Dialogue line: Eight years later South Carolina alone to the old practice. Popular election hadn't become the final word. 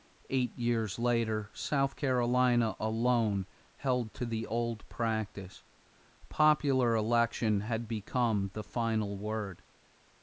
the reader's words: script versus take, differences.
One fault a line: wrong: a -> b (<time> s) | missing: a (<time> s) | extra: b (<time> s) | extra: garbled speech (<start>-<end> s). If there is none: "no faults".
extra: held (3.8 s)
wrong: hadn't -> had (7.6 s)